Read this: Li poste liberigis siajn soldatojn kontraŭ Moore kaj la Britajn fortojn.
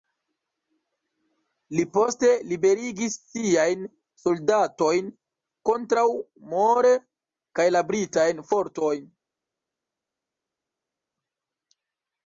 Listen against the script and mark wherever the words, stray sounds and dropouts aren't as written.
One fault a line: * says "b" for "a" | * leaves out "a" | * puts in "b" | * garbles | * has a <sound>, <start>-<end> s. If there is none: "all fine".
all fine